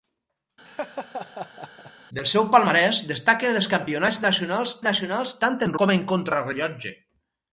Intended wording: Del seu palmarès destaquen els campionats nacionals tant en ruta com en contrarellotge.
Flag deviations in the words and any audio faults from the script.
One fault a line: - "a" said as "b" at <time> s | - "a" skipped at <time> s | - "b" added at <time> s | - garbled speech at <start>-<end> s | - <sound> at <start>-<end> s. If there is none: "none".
- laugh at 0.6-1.9 s
- "nacionals" added at 4.9 s
- "ruta" skipped at 5.7 s